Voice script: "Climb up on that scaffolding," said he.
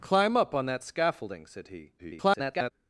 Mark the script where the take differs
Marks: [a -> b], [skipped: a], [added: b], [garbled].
"Climb up on that scaffolding," said he. [garbled]